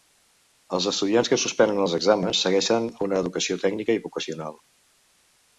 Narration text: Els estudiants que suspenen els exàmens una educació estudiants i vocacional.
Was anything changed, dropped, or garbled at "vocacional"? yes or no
no